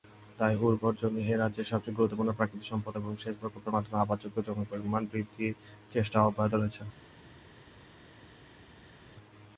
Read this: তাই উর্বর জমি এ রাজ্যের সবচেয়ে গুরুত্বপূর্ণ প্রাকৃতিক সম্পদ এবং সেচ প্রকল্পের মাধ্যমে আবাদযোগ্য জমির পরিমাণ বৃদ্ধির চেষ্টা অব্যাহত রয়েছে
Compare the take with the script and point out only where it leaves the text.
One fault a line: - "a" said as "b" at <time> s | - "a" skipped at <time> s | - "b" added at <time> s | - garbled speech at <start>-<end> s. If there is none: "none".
none